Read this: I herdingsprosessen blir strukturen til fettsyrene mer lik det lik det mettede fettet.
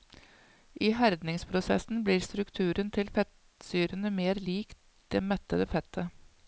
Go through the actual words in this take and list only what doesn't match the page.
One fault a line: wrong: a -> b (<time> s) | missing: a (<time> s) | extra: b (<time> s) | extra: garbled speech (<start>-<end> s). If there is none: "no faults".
missing: lik det (5.2 s)